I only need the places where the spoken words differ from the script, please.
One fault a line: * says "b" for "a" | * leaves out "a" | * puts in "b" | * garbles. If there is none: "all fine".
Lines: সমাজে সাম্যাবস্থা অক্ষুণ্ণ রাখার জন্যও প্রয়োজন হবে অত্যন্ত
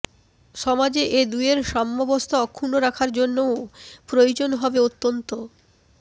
* puts in "এ দুয়ের"